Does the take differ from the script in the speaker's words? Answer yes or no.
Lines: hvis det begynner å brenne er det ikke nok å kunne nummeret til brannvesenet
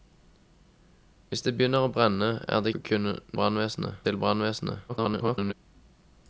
yes